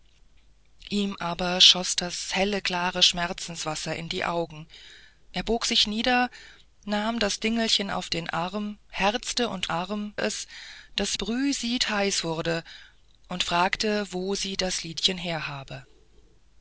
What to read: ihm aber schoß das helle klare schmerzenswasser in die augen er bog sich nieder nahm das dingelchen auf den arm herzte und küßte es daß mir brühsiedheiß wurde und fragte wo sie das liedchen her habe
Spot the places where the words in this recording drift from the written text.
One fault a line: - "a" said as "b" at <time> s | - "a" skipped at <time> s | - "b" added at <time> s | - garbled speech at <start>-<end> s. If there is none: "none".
- "küßte" said as "arm" at 9.7 s
- "mir" skipped at 11.2 s